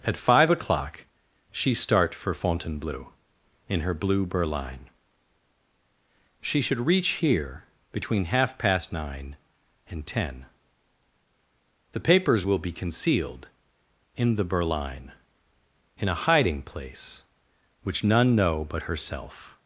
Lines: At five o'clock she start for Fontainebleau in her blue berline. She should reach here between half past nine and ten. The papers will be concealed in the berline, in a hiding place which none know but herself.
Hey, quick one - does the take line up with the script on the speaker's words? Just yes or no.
yes